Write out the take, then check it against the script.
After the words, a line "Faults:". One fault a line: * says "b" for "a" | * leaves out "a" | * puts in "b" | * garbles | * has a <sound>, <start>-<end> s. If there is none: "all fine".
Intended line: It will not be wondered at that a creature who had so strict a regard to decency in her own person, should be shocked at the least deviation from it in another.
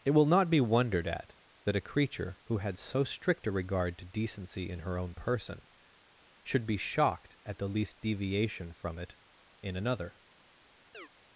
It will not be wondered at that a creature who had so strict a regard to decency in her own person, should be shocked at the least deviation from it in another.
Faults:
* has a chirp, 10.9-11.1 s